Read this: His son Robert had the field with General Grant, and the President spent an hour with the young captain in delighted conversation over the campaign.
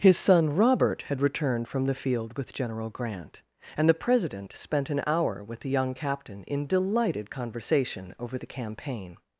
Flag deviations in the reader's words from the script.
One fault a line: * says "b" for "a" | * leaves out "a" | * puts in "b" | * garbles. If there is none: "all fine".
* puts in "returned from"